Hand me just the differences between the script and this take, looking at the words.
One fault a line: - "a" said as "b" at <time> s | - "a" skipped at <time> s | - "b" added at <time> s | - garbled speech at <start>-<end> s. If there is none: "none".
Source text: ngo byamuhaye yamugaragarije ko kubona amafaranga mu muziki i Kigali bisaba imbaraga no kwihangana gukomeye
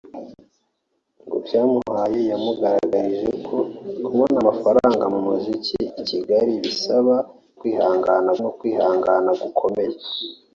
- "imbaraga" said as "kwihangana" at 7.6 s